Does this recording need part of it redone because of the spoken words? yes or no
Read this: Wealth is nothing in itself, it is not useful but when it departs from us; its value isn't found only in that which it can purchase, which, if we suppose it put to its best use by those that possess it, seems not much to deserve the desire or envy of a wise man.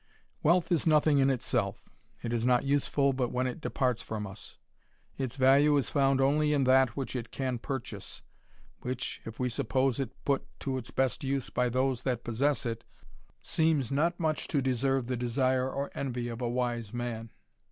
yes